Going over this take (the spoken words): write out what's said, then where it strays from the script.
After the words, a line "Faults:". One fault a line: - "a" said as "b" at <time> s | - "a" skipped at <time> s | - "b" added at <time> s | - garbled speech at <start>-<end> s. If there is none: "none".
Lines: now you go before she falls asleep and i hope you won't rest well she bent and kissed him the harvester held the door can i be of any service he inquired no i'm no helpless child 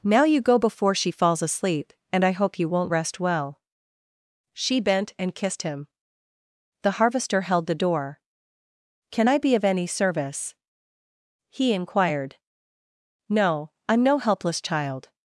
now you go before she falls asleep and i hope you won't rest well she bent and kissed him the harvester held the door can i be of any service he inquired no i'm no helpless child
Faults:
none